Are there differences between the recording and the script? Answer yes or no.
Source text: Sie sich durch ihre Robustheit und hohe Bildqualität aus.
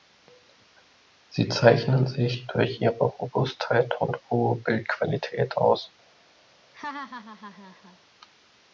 yes